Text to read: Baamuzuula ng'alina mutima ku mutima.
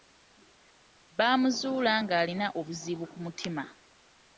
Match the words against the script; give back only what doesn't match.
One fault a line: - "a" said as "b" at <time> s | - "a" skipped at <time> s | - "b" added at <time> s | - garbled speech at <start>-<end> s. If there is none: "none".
- "mutima" said as "obuzibu" at 2.6 s